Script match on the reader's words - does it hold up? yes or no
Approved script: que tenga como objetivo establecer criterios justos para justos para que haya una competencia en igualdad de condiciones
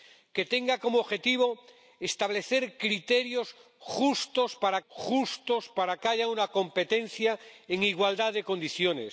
yes